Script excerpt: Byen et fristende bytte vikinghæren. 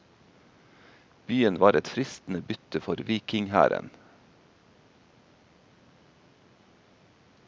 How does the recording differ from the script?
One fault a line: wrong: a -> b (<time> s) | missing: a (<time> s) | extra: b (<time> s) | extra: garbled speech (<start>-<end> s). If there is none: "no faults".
extra: var (1.6 s)
extra: for (2.8 s)